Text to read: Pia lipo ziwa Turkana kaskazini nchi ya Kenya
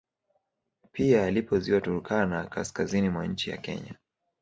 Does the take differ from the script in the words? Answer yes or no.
yes